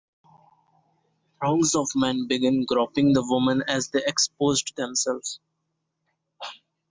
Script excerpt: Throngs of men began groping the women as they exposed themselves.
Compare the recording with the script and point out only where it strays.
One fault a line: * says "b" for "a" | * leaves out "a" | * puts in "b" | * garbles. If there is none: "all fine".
all fine